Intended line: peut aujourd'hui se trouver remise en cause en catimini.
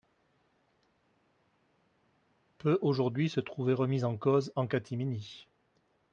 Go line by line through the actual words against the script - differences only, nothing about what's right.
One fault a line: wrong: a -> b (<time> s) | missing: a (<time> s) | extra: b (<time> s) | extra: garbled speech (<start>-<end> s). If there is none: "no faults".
no faults